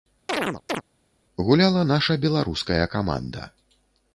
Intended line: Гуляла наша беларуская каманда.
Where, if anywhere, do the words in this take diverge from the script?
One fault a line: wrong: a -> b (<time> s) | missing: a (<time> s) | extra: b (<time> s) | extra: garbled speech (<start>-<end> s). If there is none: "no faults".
no faults